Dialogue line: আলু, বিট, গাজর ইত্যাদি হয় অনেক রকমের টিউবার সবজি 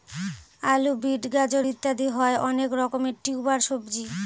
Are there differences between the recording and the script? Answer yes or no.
no